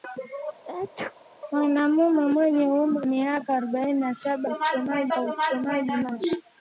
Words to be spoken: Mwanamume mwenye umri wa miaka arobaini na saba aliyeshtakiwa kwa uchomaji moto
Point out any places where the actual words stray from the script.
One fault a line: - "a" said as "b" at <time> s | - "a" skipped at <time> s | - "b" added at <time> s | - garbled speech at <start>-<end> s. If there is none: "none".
- "wa" skipped at 3.1 s
- "aliyeshtakiwa" said as "uchomaji" at 4.4 s